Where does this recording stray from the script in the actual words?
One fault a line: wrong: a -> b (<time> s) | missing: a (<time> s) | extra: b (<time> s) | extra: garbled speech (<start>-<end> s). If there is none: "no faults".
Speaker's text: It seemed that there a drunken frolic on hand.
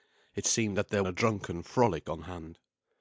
no faults